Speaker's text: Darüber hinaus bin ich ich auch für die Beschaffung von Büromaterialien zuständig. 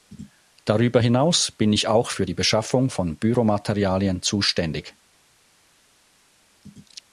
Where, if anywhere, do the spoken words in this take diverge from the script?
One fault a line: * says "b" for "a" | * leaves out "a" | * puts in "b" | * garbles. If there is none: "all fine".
* leaves out "ich"